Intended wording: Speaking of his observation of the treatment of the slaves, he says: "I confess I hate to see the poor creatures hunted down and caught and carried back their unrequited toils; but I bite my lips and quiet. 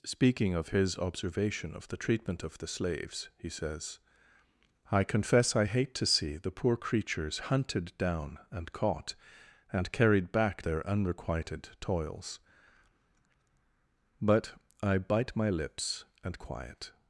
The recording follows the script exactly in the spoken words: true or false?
true